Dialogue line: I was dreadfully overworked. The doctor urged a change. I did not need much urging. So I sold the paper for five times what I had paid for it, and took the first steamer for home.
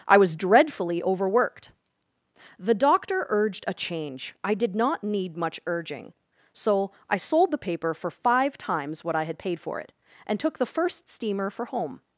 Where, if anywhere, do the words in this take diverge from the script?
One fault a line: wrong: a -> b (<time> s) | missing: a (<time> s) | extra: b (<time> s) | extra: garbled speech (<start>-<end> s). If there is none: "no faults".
no faults